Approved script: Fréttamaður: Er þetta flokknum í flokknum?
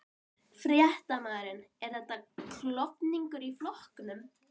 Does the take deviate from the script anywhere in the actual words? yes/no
yes